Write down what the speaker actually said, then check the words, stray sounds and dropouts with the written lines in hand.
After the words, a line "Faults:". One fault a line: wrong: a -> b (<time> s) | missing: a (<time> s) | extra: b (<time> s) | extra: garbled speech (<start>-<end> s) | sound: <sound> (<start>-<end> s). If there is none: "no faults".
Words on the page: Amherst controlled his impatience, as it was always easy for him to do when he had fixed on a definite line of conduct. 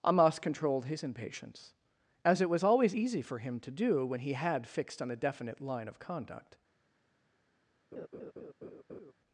Amos controlled his impatience, as it was always easy for him to do when he had fixed on a definite line of conduct.
Faults:
wrong: Amherst -> Amos (0.1 s)
sound: laugh (7.9-9.1 s)